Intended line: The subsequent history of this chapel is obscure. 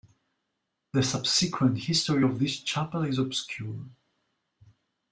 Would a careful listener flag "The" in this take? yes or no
no